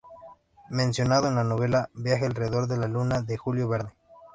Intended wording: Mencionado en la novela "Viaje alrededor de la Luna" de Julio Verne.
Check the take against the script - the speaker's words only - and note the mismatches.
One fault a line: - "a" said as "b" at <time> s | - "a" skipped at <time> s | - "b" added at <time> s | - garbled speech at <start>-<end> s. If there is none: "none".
none